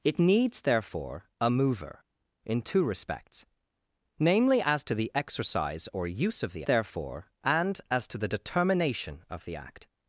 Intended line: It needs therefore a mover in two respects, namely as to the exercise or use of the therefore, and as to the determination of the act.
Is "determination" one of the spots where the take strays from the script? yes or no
no